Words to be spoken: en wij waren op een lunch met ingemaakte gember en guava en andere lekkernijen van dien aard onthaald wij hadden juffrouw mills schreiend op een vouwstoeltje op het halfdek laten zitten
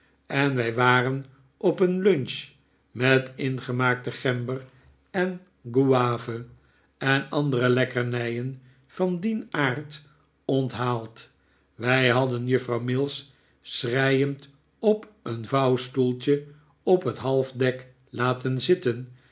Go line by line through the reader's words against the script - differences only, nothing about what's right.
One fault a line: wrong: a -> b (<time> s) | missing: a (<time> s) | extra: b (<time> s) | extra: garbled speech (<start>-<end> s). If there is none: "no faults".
no faults